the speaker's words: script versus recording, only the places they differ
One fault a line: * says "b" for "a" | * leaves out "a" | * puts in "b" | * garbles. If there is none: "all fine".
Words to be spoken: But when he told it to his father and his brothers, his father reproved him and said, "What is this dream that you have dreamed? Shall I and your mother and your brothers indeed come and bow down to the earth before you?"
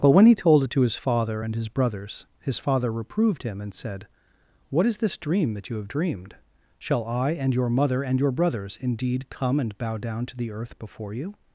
all fine